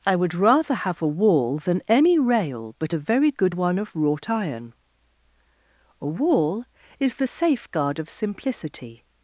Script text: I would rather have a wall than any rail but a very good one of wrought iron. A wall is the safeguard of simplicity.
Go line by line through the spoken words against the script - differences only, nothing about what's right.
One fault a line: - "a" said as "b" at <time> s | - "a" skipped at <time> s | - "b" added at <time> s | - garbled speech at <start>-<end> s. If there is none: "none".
none